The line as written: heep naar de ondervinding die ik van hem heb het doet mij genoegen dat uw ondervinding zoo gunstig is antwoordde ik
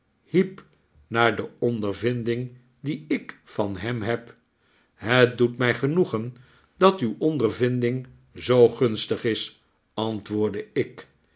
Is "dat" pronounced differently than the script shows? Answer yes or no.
no